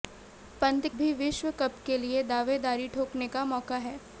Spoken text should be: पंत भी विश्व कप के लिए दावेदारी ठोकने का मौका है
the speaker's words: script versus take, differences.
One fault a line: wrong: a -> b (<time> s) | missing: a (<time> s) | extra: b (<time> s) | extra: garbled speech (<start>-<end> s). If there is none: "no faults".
no faults